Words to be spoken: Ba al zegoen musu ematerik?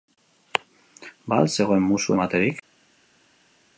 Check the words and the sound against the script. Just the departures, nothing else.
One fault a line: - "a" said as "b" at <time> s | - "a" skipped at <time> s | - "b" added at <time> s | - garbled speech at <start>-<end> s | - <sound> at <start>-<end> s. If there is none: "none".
none